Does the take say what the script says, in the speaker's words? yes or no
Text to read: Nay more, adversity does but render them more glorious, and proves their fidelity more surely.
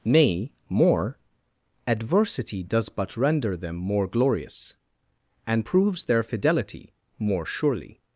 yes